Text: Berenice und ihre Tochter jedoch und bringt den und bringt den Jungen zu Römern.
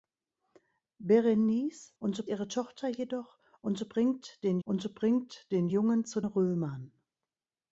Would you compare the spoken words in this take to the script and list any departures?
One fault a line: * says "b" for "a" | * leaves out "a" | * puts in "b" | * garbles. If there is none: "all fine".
all fine